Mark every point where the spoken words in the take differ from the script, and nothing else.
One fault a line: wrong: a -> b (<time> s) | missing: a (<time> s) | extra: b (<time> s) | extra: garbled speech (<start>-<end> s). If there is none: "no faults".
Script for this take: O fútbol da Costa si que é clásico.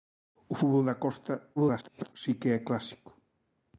extra: garbled speech (1.6-2.1 s)